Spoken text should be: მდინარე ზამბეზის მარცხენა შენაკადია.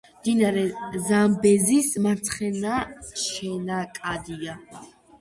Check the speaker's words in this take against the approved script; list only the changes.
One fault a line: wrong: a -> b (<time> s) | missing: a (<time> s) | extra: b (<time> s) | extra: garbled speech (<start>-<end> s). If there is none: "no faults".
no faults